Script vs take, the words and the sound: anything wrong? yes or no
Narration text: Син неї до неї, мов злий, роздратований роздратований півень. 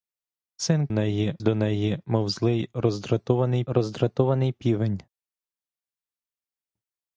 no